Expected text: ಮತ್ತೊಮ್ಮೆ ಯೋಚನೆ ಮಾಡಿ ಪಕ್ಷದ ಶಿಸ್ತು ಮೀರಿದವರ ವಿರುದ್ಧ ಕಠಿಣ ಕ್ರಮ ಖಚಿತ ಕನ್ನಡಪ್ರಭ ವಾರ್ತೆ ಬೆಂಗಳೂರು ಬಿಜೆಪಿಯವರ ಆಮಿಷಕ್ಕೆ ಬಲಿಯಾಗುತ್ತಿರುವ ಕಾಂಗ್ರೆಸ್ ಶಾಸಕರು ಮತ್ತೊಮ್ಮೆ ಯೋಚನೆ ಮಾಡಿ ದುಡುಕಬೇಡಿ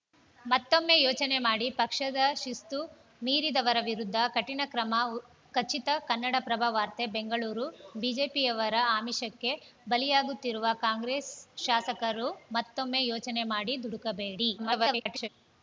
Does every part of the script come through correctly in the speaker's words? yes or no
no